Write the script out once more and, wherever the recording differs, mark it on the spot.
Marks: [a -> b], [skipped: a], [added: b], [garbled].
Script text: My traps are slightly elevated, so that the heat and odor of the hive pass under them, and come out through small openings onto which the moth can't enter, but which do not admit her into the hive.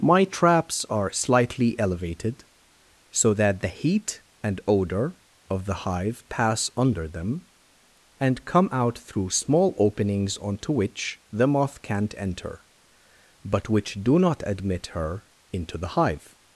My traps are slightly elevated, so that the heat and odor of the hive pass under them, and come out through small openings onto which the moth can't enter, but which do not admit her into the hive.